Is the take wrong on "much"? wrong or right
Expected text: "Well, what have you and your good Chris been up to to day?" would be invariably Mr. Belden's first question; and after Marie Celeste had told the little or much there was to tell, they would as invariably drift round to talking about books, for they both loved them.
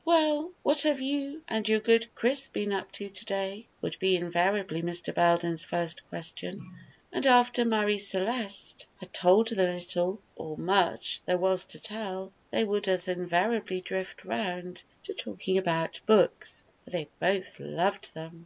right